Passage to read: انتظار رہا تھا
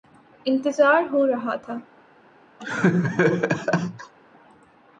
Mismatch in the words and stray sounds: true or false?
true